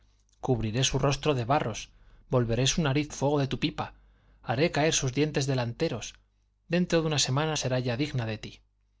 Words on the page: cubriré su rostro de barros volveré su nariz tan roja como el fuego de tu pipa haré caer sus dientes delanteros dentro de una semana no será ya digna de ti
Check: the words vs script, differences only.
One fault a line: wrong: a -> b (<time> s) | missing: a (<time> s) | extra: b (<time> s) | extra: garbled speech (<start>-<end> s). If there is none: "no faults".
missing: tan roja como (3.1 s)
missing: no (7.6 s)